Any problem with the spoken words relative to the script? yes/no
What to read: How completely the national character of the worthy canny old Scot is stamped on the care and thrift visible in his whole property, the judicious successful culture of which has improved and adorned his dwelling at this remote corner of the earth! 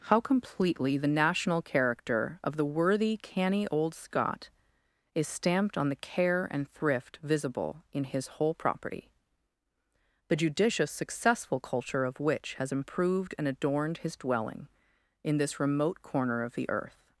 yes